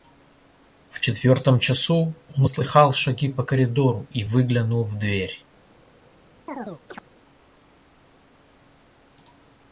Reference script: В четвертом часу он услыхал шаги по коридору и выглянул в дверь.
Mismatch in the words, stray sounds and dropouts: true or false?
true